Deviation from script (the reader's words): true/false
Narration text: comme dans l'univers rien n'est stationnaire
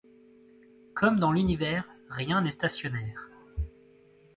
false